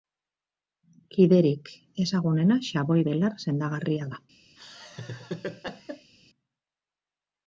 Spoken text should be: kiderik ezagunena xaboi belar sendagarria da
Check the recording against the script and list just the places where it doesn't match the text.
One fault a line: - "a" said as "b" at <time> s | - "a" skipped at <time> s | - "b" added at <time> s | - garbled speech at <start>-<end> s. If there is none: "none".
none